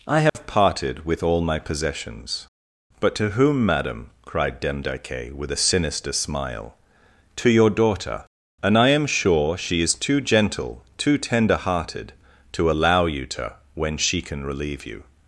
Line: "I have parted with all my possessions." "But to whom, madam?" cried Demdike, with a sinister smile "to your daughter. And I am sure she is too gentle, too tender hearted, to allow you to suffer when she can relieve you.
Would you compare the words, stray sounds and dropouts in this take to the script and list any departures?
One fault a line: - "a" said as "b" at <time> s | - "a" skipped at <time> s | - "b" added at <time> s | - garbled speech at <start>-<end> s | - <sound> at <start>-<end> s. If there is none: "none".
- dropout at 0.3-0.3 s
- "suffer" skipped at 13.6 s